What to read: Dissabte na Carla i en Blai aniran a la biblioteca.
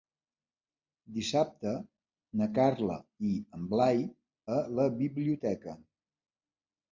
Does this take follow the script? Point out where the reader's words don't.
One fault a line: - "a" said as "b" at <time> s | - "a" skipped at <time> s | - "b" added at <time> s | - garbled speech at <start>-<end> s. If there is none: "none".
- "aniran" skipped at 4.0 s